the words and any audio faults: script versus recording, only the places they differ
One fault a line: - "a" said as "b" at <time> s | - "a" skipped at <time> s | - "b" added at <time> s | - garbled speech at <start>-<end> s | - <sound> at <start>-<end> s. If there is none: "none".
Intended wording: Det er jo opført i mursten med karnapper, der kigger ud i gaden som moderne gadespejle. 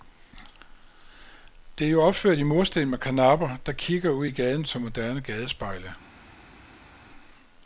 none